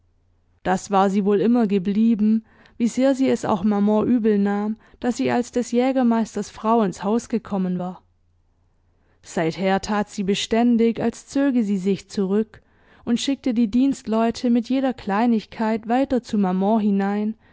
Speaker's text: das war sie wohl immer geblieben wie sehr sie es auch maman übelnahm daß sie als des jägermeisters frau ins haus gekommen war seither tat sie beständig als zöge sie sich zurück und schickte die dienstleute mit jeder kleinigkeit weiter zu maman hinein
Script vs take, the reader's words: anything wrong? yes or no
no